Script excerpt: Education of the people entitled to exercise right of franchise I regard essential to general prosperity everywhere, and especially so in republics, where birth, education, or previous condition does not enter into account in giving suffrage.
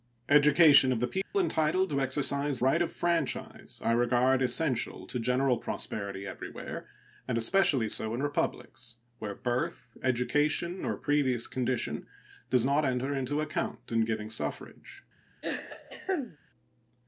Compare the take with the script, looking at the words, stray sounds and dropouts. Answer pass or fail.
fail